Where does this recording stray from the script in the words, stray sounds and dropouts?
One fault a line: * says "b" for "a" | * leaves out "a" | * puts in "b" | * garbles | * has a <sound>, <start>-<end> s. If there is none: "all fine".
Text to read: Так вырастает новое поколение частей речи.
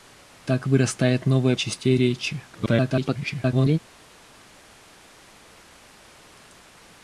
* leaves out "поколение"
* garbles